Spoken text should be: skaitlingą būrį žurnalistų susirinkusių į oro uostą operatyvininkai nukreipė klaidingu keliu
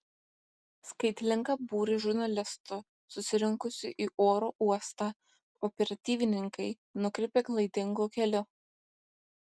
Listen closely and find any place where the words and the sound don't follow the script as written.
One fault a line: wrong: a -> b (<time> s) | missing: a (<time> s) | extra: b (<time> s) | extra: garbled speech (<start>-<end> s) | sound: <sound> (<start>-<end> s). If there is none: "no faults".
no faults